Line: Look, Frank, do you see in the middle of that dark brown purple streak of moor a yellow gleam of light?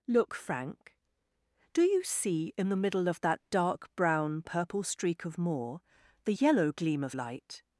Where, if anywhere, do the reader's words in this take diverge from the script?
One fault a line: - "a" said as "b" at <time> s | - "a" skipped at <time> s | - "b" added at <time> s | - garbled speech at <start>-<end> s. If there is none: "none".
- "a" said as "the" at 6.2 s